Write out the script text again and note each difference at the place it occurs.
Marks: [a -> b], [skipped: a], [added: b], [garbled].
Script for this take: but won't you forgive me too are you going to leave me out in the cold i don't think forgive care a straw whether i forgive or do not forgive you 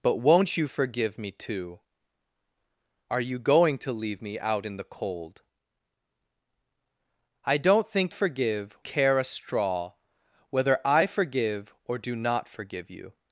but won't you forgive me too are you going to leave me out in the cold i don't think forgive care a straw whether i forgive or do not forgive you